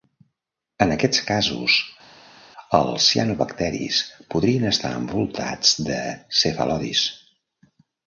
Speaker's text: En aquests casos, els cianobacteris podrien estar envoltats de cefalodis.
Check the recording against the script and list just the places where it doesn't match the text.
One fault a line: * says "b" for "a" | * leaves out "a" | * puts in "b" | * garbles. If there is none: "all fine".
all fine